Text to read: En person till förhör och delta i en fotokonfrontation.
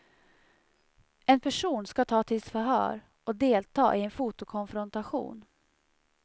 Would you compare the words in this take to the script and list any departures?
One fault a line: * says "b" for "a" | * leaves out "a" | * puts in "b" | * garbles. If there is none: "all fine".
* puts in "ska tas"